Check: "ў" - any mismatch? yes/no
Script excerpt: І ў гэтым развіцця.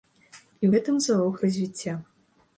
no